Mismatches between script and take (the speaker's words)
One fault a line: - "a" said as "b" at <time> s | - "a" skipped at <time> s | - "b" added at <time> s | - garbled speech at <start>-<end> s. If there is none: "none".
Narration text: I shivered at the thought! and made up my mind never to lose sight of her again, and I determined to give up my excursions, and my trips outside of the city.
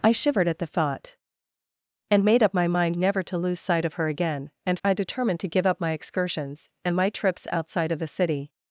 none